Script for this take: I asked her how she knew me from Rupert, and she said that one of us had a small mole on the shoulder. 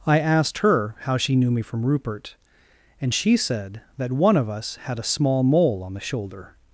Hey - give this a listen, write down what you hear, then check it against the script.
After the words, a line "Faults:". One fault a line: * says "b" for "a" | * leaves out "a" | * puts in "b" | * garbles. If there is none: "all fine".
I asked her how she knew me from Rupert, and she said that one of us had a small mole on the shoulder.
Faults:
all fine